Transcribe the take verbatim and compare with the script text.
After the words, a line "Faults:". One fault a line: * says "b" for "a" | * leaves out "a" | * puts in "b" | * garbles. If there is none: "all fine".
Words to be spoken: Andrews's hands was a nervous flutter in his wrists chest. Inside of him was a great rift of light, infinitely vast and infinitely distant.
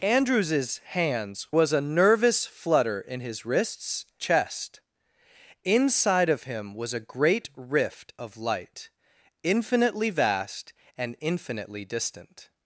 Andrews's hands was a nervous flutter in his wrists chest. Inside of him was a great rift of light, infinitely vast and infinitely distant.
Faults:
all fine